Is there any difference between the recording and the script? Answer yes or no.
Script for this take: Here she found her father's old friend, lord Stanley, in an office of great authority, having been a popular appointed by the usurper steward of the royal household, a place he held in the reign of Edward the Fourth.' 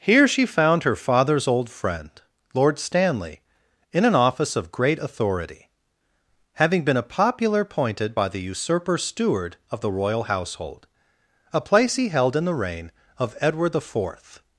no